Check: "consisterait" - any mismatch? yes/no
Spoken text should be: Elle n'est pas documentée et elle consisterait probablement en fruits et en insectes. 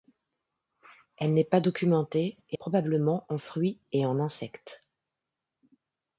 yes